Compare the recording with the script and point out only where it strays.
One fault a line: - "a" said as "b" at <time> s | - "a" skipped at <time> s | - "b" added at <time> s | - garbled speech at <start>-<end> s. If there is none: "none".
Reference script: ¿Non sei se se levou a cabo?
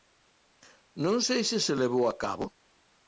none